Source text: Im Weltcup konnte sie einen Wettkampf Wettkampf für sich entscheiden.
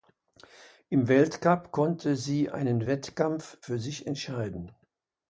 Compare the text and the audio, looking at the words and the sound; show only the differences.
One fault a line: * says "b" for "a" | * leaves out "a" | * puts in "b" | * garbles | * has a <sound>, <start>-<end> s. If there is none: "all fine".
* leaves out "Wettkampf"